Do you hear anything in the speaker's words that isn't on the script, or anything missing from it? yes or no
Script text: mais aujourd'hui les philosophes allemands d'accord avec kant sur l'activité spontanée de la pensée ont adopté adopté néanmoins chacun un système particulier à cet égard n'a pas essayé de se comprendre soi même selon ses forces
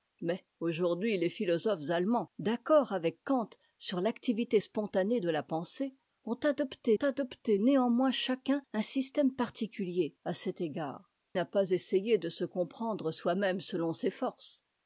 no